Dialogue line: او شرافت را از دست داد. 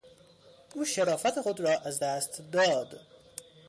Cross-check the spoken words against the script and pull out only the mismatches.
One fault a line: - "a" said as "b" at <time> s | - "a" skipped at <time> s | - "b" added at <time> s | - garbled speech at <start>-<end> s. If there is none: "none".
- "خود" added at 1.4 s